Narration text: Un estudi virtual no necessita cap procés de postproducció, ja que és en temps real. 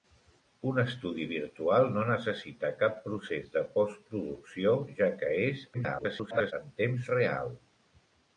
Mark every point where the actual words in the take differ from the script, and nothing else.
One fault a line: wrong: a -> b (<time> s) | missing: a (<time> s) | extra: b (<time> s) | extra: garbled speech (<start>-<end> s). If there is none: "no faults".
extra: garbled speech (5.7-6.5 s)